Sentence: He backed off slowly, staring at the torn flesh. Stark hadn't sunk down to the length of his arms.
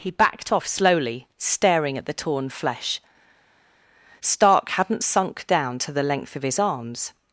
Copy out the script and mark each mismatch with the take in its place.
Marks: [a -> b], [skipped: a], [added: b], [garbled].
He backed off slowly, staring at the torn flesh. Stark hadn't sunk down to the length of his arms.